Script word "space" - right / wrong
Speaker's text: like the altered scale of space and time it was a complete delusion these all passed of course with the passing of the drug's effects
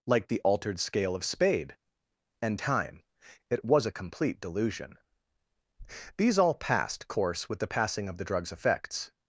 wrong